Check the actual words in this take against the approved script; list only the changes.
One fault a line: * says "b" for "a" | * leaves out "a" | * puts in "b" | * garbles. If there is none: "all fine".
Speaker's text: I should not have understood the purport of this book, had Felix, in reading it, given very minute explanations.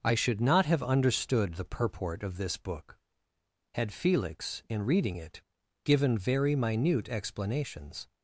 all fine